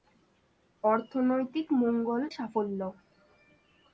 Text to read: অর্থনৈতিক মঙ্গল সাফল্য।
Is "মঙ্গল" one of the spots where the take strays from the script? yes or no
no